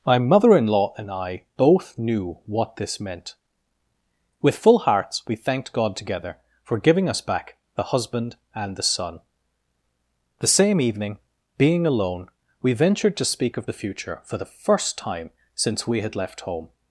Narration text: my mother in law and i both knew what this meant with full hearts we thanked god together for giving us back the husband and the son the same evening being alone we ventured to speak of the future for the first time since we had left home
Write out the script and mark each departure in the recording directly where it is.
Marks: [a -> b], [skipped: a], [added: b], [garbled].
my mother in law and i both knew what this meant with full hearts we thanked god together for giving us back the husband and the son the same evening being alone we ventured to speak of the future for the first time since we had left home